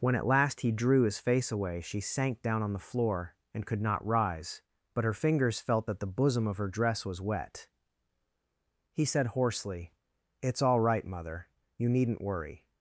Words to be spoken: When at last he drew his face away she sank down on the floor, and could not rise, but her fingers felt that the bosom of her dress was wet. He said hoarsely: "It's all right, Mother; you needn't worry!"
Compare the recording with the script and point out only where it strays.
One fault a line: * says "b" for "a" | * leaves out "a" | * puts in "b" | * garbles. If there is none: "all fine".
all fine